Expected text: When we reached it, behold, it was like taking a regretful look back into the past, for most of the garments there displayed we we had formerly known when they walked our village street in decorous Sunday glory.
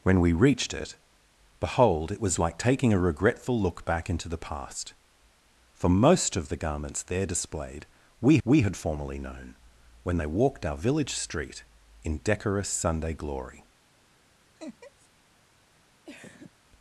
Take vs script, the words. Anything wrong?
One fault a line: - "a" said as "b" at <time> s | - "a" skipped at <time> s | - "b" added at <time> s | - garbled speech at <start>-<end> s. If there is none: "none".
none